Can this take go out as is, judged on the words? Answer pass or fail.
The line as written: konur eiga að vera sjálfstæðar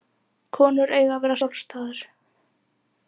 pass